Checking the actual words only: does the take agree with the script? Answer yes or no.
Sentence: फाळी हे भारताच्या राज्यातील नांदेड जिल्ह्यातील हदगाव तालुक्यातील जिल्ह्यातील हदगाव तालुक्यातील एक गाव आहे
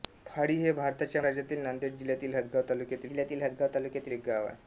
yes